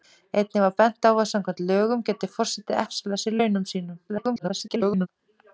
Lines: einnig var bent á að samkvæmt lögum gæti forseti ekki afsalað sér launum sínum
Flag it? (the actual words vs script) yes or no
yes